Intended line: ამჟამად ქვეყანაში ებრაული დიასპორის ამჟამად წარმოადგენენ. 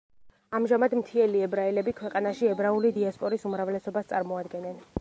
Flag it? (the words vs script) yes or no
yes